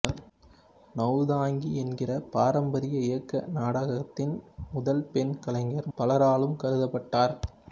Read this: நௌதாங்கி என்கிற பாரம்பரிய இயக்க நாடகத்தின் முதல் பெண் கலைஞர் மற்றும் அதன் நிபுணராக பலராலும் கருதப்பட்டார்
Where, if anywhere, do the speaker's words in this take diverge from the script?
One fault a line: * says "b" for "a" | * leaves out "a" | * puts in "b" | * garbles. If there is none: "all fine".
* leaves out "மற்றும் அதன் நிபுணராக"